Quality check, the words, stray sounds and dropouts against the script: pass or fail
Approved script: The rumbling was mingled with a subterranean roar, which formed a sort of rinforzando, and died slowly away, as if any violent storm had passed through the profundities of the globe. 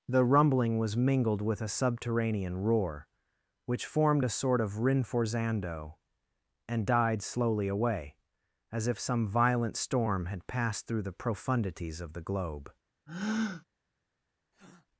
fail